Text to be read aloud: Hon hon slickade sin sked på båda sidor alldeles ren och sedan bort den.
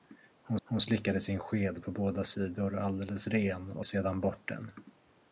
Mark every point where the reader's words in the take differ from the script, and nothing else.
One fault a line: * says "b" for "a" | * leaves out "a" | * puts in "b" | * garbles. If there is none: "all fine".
all fine